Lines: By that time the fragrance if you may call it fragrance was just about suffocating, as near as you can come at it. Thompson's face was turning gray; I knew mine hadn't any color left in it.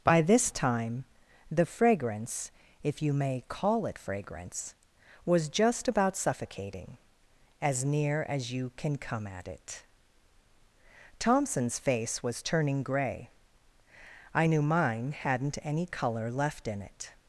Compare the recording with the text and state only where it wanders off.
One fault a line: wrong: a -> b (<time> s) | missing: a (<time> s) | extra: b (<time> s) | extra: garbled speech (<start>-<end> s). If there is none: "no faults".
wrong: that -> this (0.2 s)